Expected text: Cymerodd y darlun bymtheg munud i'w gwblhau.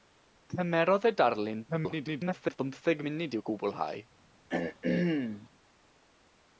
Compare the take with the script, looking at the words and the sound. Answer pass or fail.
fail